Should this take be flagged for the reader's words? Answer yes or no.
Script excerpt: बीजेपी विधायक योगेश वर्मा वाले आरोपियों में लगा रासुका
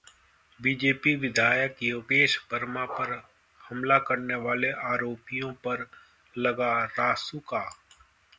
yes